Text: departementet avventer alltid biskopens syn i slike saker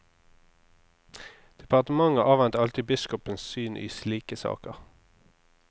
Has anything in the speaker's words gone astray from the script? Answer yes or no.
no